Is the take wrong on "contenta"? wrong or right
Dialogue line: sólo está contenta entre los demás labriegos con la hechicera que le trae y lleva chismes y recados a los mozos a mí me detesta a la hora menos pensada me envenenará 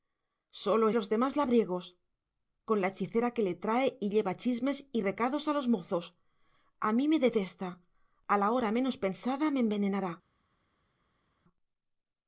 wrong